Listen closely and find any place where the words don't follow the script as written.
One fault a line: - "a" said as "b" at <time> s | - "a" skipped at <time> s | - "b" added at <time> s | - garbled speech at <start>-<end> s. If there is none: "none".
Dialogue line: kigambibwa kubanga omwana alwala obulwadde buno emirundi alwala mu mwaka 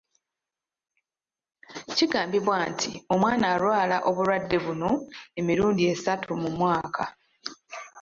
- "kubanga" said as "nti" at 2.7 s
- "alwala" said as "esatu" at 5.9 s